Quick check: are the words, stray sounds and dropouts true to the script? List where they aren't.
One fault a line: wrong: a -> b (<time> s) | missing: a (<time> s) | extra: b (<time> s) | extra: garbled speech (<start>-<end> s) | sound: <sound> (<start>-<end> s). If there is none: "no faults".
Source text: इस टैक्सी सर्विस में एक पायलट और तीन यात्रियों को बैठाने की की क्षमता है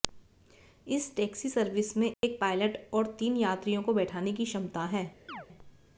sound: dropout (2.1-2.2 s)
missing: की (4.5 s)
sound: chirp (5.3-5.5 s)